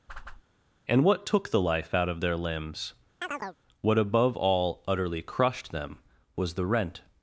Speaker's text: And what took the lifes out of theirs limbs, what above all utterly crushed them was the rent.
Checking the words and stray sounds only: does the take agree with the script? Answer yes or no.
no